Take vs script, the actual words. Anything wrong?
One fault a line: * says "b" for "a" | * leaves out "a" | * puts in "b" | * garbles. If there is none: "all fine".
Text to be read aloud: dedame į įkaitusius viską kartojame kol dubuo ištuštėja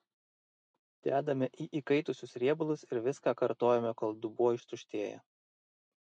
* puts in "riebalus ir"